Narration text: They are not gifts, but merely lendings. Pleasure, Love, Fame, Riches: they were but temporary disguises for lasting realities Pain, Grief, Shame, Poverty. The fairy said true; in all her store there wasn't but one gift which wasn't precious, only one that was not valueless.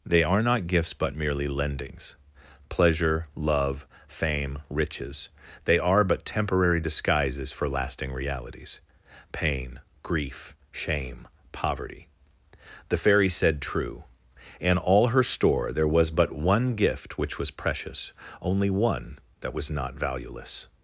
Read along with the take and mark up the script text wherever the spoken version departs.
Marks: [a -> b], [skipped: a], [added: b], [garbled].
They are not gifts, but merely lendings. Pleasure, Love, Fame, Riches: they [were -> are] but temporary disguises for lasting realities Pain, Grief, Shame, Poverty. The fairy said true; in all her store there [wasn't -> was] but one gift which [wasn't -> was] precious, only one that was not valueless.